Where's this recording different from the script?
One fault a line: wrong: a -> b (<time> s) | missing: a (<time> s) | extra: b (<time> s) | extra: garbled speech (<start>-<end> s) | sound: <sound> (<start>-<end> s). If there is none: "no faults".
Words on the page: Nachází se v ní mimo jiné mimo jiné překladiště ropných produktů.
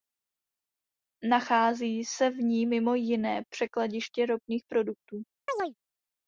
missing: mimo jiné (3.4 s)
sound: chirp (5.5-5.7 s)